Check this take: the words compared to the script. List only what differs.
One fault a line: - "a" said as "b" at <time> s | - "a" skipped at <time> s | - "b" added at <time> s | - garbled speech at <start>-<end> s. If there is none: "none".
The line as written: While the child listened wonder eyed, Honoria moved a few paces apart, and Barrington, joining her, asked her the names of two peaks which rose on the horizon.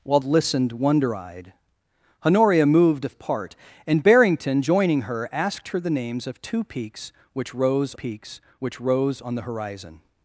- "the child" skipped at 0.2 s
- "few paces" skipped at 3.1 s
- "peaks which rose" added at 7.9 s